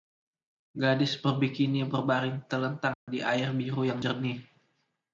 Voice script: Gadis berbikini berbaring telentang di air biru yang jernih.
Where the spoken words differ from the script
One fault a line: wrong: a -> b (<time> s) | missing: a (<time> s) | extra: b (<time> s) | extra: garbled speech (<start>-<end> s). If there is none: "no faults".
no faults